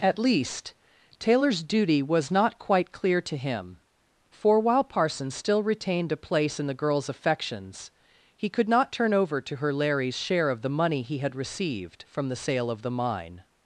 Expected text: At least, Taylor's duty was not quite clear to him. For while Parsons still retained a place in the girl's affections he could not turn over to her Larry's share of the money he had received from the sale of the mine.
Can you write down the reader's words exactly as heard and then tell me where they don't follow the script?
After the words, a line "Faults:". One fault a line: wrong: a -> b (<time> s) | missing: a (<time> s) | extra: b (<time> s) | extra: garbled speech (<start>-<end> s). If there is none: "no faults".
At least, Taylor's duty was not quite clear to him. For while Parsons still retained a place in the girl's affections he could not turn over to her Larry's share of the money he had received from the sale of the mine.
Faults:
no faults